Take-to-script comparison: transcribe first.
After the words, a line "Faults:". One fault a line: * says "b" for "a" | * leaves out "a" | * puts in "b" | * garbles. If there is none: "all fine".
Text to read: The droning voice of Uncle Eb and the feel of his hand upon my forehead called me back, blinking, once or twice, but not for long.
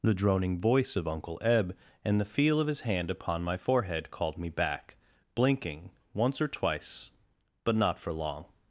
The droning voice of Uncle Eb and the feel of his hand upon my forehead called me back, blinking, once or twice, but not for long.
Faults:
all fine